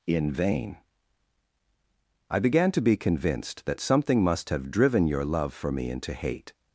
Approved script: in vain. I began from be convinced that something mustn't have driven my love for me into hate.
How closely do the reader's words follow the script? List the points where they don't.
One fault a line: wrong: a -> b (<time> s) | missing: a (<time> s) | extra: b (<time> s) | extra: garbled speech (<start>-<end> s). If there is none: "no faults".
wrong: from -> to (2.7 s)
wrong: mustn't -> must (4.2 s)
wrong: my -> your (5.1 s)